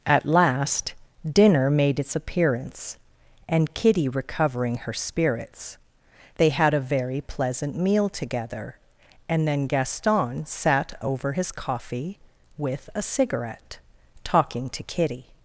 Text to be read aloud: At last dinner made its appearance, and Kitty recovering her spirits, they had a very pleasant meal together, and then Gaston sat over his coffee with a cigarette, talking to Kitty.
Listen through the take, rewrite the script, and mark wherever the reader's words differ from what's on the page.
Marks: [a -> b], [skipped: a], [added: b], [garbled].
At last dinner made its appearance, and Kitty recovering her spirits, they had a very pleasant meal together, and then Gaston sat over his coffee with a cigarette, talking to Kitty.